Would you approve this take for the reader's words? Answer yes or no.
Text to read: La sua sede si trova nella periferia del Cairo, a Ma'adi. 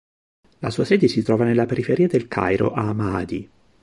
yes